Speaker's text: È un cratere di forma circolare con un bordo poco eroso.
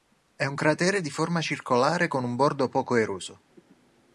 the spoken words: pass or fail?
pass